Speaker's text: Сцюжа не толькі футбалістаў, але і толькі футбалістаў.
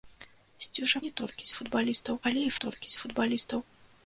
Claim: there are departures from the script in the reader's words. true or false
false